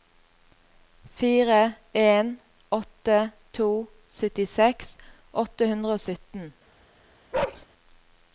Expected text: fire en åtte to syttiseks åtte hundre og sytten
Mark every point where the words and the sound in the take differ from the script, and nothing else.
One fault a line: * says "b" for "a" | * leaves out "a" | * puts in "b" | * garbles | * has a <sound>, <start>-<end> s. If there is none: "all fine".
* has a bark, 7.3-7.7 s